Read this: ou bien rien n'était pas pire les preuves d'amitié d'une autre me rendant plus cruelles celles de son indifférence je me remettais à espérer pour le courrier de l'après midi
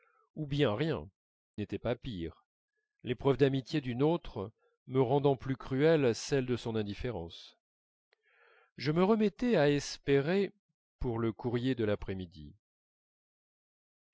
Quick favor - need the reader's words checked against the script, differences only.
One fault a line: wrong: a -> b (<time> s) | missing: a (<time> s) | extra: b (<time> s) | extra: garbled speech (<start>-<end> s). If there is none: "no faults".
no faults